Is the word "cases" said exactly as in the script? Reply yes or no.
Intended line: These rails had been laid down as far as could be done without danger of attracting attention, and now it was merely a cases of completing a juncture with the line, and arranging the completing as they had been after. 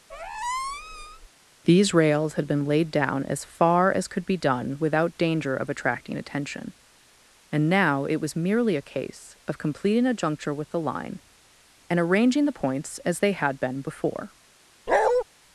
no